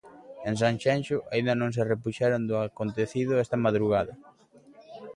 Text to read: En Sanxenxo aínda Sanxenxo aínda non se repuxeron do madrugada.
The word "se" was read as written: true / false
true